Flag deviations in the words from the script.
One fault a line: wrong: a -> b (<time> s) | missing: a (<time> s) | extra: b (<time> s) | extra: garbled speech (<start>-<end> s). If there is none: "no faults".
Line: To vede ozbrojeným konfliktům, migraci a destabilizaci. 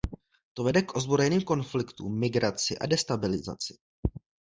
extra: k (0.8 s)